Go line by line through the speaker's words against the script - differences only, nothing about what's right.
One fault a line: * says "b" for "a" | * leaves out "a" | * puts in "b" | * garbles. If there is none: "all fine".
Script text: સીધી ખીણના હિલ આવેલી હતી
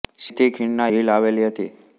all fine